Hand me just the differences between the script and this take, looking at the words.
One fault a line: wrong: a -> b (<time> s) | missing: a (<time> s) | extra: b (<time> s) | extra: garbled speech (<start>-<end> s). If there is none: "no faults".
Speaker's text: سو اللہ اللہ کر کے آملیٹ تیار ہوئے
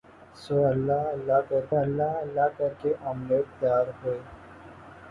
extra: اللہ اللہ کر (1.8 s)